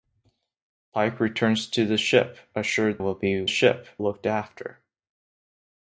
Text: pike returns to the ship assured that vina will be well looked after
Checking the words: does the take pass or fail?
fail